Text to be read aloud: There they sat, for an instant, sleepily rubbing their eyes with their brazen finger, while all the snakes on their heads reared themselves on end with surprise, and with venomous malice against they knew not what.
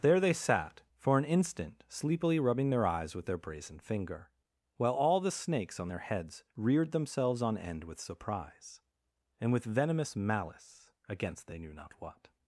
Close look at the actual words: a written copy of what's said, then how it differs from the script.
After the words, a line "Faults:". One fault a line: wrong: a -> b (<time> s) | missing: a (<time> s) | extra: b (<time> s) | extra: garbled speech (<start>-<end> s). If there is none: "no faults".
There they sat, for an instant, sleepily rubbing their eyes with their brazen finger, while all the snakes on their heads reared themselves on end with surprise, and with venomous malice against they knew not what.
Faults:
no faults